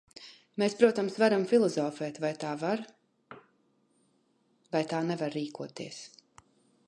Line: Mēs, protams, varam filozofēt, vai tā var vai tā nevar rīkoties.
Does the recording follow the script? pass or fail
pass